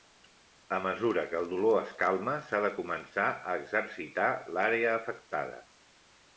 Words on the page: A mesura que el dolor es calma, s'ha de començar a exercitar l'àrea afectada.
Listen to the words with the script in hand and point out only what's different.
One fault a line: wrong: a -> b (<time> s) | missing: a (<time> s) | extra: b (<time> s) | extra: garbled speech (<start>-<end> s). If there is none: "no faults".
no faults